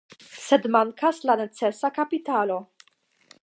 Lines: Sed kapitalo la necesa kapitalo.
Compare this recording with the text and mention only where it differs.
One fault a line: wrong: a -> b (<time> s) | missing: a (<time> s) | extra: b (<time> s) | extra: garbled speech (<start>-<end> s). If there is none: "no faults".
wrong: kapitalo -> mankas (0.8 s)